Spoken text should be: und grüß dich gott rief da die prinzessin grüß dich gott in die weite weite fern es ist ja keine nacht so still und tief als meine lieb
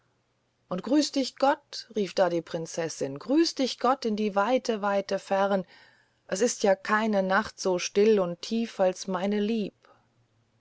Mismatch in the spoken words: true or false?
false